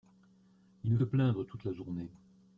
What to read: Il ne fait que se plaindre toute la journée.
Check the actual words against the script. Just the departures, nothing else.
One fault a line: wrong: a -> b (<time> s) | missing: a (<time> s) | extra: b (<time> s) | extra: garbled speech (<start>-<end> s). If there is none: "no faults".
missing: fait que se (1.0 s)